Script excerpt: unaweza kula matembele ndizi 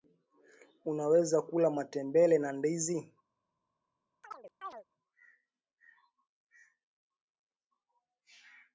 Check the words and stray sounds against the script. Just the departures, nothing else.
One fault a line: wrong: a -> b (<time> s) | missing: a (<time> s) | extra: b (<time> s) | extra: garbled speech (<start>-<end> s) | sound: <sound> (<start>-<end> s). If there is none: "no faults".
extra: na (2.4 s)
sound: chirp (4.2-4.8 s)